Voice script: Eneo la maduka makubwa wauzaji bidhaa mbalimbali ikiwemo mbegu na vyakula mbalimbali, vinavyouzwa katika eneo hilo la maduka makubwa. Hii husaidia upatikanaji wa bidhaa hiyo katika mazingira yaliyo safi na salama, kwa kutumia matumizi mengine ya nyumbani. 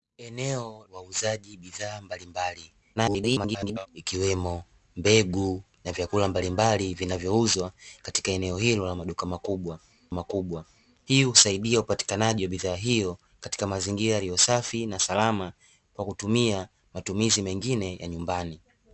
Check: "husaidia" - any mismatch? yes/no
no